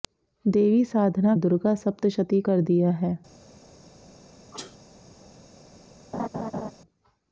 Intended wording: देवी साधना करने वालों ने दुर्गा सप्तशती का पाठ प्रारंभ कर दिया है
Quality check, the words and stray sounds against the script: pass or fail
fail